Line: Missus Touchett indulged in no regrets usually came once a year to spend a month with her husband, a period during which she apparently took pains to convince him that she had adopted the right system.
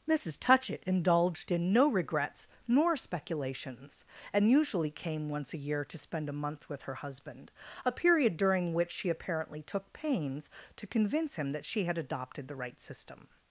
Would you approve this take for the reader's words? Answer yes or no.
no